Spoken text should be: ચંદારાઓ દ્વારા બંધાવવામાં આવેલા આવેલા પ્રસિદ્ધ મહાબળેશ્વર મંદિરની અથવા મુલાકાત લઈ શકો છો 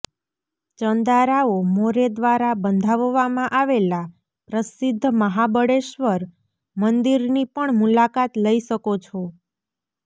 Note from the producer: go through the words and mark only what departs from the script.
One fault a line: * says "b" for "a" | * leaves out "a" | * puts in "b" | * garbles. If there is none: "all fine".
* puts in "મોરે"
* leaves out "આવેલા"
* says "પણ" for "અથવા"